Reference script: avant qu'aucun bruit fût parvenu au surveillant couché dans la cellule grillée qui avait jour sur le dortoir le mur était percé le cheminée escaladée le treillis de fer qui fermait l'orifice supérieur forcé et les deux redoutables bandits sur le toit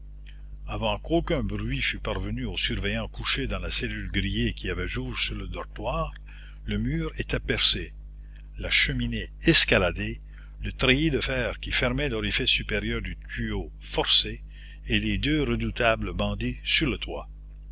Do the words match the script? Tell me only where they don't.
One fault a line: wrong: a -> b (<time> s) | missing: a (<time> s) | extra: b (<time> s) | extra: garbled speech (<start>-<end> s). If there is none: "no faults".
wrong: le -> la (8.6 s)
extra: du tuyau (13.0 s)